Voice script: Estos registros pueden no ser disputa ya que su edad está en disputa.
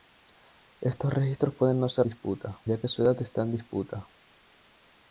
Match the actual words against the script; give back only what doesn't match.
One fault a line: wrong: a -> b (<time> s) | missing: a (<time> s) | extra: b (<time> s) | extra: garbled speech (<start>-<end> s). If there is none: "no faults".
no faults